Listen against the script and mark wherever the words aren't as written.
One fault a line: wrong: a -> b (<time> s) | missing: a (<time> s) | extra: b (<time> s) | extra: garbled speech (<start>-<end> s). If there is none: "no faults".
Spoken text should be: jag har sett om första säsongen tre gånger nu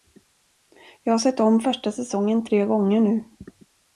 no faults